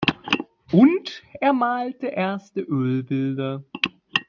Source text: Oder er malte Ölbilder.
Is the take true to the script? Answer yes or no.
no